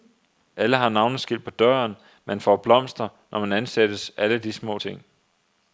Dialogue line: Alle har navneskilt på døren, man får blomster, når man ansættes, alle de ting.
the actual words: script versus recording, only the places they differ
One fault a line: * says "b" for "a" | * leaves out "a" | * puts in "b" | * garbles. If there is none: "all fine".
* puts in "små"